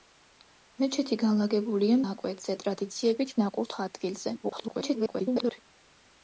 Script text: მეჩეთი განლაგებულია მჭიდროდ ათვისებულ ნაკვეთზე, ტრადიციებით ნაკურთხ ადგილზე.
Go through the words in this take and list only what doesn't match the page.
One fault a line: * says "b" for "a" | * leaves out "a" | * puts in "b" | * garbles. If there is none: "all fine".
* leaves out "მჭიდროდ ათვისებულ"
* garbles